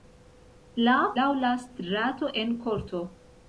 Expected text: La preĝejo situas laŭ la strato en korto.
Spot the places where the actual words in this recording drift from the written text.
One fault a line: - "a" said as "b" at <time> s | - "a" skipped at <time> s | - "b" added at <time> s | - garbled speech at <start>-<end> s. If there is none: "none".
- "preĝejo situas" skipped at 0.9 s